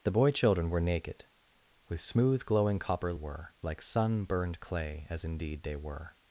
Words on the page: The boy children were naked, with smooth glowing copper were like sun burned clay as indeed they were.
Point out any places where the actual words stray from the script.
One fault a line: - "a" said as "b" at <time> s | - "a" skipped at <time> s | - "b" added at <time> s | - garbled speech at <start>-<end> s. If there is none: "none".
none